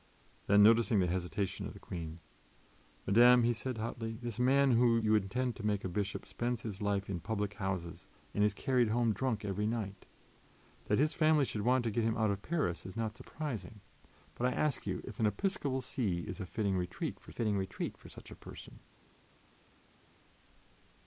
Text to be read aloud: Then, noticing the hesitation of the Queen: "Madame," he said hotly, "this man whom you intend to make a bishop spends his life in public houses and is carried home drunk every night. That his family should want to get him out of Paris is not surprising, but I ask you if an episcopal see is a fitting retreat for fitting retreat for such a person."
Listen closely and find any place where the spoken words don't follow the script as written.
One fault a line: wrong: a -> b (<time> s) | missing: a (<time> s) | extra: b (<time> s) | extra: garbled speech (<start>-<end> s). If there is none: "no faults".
no faults